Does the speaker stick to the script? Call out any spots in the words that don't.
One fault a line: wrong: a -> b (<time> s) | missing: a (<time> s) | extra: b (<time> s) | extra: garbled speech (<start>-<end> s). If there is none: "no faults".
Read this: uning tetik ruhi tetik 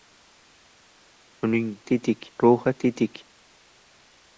no faults